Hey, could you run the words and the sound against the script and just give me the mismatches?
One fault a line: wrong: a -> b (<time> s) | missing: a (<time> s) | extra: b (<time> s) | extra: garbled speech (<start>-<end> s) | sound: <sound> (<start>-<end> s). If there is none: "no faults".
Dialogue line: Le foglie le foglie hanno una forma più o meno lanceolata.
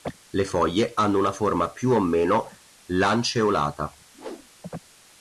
missing: le foglie (0.9 s)
sound: whoosh (4.1-4.5 s)